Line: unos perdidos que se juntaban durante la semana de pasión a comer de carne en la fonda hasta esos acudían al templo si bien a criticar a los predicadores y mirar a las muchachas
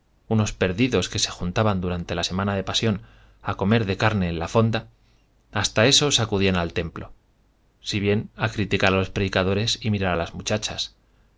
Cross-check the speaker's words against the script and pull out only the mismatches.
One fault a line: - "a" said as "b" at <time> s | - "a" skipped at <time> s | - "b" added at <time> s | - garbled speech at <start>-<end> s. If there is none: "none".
none